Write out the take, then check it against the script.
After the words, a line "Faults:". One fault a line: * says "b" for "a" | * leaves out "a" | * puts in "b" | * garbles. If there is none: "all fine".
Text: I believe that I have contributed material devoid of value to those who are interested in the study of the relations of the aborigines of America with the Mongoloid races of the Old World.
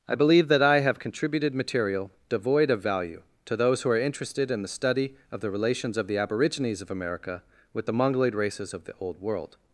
I believe that I have contributed material devoid of value to those who are interested in the study of the relations of the aborigines of America with the Mongoloid races of the Old World.
Faults:
all fine